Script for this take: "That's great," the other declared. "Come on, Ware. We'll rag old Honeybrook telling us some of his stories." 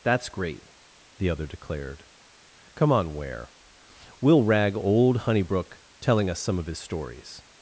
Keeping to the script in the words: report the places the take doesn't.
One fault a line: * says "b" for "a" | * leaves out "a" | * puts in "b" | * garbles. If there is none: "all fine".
all fine